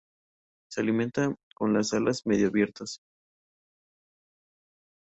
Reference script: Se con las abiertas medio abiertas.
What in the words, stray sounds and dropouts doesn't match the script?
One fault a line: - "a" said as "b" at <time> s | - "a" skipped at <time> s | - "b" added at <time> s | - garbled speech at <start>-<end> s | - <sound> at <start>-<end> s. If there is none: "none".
- "alimenta" added at 0.8 s
- "abiertas" said as "alas" at 1.9 s